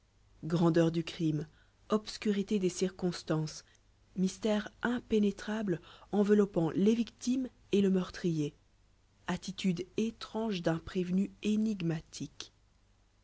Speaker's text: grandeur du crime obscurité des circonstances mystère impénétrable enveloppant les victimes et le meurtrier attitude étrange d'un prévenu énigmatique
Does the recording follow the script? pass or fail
pass